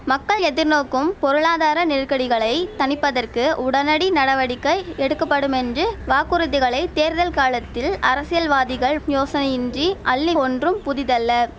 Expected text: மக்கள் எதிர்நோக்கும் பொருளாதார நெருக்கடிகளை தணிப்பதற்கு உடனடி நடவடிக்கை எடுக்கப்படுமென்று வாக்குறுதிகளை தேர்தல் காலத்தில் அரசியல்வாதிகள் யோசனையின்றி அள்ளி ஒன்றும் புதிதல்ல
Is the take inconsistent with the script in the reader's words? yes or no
no